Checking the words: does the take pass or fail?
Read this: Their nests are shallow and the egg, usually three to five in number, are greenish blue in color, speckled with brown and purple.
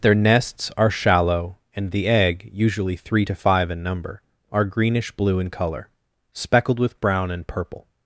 pass